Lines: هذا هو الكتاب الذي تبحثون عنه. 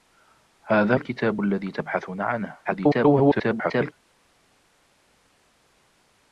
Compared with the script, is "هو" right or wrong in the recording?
wrong